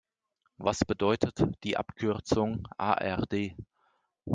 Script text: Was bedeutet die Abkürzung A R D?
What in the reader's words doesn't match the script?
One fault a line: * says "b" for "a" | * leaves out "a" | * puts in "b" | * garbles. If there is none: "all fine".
all fine